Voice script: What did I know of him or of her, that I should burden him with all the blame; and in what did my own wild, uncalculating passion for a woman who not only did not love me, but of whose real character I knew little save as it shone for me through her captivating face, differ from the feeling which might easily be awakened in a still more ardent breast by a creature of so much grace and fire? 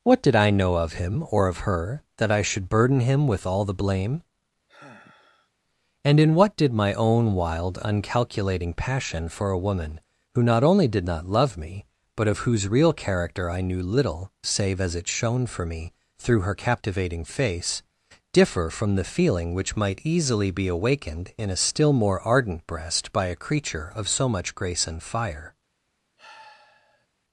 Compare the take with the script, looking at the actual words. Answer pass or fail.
pass